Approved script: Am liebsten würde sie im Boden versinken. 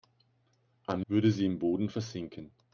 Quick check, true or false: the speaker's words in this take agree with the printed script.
false